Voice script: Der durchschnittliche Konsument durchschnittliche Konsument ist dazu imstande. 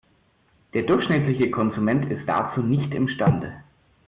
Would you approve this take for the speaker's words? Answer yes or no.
no